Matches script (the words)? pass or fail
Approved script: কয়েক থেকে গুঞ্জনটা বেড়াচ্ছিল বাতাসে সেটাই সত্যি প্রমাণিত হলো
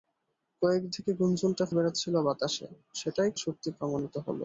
pass